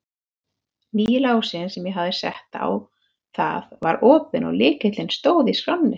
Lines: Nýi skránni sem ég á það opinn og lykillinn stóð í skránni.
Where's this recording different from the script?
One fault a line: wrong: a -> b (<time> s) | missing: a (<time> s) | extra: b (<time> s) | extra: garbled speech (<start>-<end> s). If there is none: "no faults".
wrong: skránni -> lásinn (1.2 s)
extra: hafði sett (2.0 s)
extra: var (3.9 s)